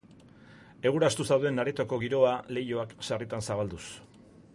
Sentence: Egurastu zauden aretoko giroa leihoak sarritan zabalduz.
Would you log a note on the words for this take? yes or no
no